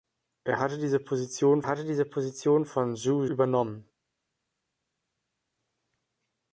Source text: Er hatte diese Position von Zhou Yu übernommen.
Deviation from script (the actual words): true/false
true